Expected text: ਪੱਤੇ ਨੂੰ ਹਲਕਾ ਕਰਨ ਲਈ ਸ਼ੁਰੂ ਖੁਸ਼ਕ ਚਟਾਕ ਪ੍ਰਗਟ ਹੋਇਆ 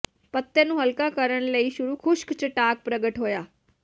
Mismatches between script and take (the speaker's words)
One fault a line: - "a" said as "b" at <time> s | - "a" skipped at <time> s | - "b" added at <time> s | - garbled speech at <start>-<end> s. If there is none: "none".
none